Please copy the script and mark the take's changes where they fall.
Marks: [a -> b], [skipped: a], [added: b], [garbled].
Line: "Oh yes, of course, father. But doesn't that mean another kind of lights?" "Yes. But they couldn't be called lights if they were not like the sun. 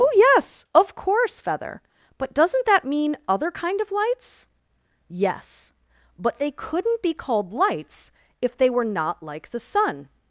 "Oh yes, of course, [father. -> feather] But doesn't that mean [another -> other] kind of lights?" "Yes. But they couldn't be called lights if they were not like the sun.